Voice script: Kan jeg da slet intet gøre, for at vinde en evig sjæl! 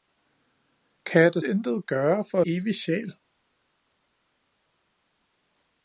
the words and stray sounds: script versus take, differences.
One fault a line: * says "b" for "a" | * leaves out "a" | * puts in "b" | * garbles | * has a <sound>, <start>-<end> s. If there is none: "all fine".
* leaves out "slet"
* leaves out "at vinde en"